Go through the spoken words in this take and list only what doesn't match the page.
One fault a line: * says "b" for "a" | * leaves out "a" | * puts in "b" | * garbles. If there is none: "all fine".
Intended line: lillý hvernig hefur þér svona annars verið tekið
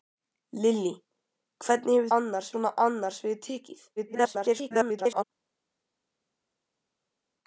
* says "annars" for "þér"
* garbles